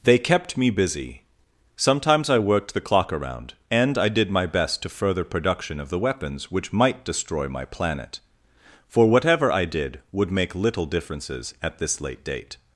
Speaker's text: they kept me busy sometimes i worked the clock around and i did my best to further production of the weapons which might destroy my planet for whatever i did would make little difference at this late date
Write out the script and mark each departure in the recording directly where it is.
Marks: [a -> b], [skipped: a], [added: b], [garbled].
they kept me busy sometimes i worked the clock around and i did my best to further production of the weapons which might destroy my planet for whatever i did would make little [difference -> differences] at this late date